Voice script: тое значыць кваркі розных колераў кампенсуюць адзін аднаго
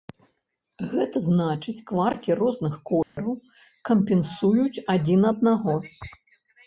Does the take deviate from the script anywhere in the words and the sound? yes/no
yes